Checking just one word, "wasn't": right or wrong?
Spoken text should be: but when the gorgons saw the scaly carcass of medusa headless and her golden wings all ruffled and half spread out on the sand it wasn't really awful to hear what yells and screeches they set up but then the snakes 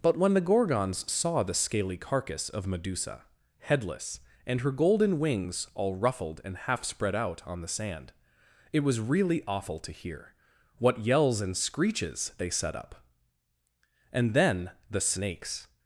wrong